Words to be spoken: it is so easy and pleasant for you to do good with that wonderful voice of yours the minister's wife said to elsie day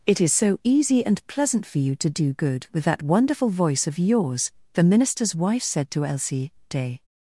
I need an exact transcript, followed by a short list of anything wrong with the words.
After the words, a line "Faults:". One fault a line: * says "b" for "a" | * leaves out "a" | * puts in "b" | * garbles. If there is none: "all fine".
it is so easy and pleasant for you to do good with that wonderful voice of yours the minister's wife said to elsie day
Faults:
all fine